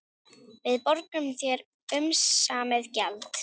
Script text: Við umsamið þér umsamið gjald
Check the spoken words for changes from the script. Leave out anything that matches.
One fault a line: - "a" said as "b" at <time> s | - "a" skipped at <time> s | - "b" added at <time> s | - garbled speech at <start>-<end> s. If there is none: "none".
- "umsamið" said as "borgum" at 0.8 s